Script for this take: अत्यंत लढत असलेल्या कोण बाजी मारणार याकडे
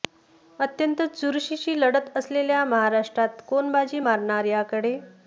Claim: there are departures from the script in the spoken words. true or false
true